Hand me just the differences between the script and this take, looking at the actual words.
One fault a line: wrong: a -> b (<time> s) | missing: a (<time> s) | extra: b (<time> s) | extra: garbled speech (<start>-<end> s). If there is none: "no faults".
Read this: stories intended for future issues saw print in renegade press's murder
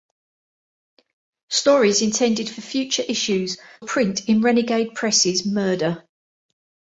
missing: saw (3.6 s)